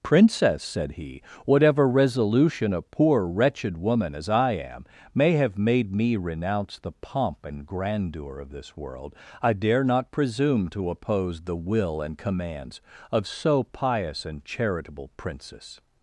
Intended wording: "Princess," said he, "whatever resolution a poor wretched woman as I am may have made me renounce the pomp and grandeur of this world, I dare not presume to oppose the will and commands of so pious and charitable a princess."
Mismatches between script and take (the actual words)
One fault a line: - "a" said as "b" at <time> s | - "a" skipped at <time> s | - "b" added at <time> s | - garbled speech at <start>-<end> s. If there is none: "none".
- "a" skipped at 15.1 s